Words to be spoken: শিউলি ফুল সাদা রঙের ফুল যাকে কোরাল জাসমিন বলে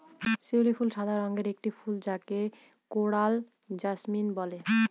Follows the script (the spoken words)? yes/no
no